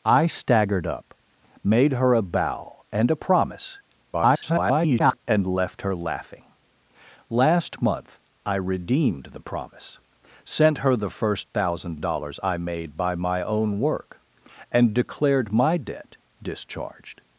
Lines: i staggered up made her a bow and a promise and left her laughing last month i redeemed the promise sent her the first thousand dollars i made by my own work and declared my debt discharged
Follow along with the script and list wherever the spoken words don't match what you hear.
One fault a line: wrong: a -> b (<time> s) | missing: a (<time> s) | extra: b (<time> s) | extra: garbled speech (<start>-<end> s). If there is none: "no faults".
extra: garbled speech (4.1-5.2 s)